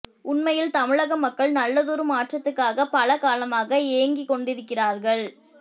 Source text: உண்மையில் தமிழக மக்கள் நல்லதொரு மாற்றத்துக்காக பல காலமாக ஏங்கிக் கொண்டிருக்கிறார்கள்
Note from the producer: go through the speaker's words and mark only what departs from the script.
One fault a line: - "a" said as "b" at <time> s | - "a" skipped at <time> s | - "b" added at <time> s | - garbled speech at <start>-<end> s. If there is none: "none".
none